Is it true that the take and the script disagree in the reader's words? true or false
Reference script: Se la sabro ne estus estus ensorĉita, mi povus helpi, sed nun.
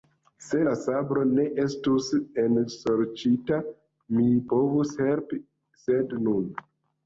true